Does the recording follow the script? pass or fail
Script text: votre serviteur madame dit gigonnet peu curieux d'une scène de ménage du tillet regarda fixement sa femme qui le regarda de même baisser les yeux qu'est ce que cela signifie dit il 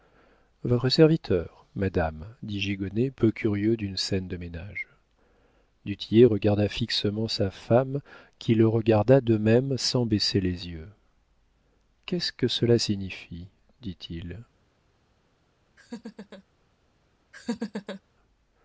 fail